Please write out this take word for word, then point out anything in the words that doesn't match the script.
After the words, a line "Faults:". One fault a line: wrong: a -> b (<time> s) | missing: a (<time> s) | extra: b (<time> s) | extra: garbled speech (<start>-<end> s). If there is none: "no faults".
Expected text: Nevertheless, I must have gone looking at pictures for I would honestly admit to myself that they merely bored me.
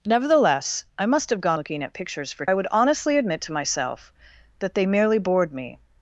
Nevertheless, I must have gone looking at pictures for I would honestly admit to myself that they merely bored me.
Faults:
no faults